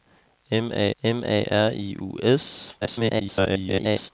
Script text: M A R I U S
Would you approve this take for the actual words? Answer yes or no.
no